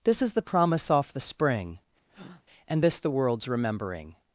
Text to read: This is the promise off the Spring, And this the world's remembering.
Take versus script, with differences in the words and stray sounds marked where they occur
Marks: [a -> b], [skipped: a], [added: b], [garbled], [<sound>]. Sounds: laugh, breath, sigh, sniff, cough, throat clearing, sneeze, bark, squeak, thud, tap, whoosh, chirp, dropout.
This is the promise off the Spring, [breath] And this the world's remembering.